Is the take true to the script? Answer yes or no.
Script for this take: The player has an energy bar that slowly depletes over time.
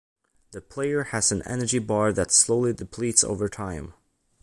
yes